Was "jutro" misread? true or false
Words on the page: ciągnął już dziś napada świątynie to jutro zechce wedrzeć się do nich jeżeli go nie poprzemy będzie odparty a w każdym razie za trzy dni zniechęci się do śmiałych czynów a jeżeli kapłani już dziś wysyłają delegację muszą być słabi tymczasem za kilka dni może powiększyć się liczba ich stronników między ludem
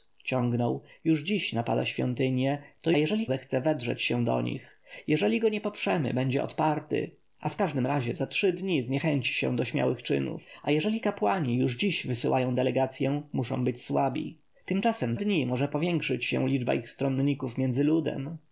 true